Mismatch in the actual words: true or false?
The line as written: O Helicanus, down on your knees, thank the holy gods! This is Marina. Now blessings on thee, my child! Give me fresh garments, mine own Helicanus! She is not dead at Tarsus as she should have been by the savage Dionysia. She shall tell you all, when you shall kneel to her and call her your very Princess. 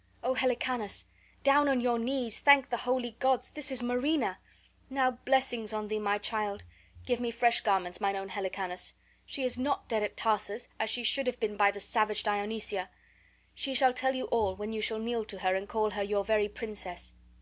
false